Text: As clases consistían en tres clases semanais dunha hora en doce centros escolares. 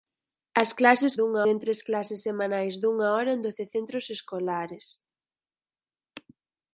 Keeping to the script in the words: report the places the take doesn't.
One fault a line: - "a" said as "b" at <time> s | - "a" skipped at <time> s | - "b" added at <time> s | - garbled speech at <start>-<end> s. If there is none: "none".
- "consistían" said as "dunha" at 1.2 s